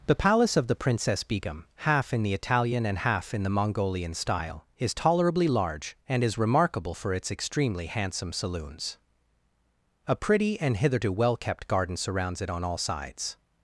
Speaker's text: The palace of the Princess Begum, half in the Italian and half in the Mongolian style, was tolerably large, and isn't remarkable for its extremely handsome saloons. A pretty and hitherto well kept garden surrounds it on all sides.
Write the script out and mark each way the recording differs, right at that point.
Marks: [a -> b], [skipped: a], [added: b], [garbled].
The palace of the Princess Begum, half in the Italian and half in the Mongolian style, [was -> is] tolerably large, and [isn't -> is] remarkable for its extremely handsome saloons. A pretty and hitherto well kept garden surrounds it on all sides.